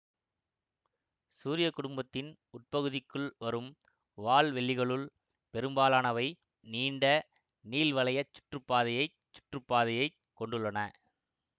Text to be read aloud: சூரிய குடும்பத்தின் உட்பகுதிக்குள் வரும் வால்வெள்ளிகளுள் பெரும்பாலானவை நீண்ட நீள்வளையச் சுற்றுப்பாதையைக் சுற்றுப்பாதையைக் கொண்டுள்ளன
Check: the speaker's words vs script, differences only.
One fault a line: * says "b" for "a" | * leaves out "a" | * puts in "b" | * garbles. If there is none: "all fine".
all fine